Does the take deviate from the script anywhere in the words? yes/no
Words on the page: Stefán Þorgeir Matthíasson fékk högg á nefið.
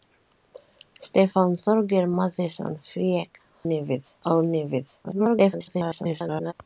yes